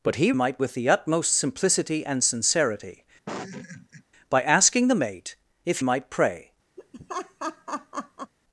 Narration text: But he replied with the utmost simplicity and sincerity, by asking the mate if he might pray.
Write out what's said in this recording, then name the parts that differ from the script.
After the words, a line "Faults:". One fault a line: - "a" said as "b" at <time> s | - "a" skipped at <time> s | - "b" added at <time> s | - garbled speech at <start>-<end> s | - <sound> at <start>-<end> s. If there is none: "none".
But he might with the utmost simplicity and sincerity, by asking the mate if might pray.
Faults:
- "replied" said as "might" at 0.3 s
- laugh at 3.3-4.0 s
- "he" skipped at 5.8 s
- laugh at 6.8-8.3 s